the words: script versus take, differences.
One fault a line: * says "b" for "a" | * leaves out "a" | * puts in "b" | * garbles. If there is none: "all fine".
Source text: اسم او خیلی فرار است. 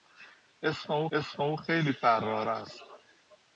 * puts in "اسم او"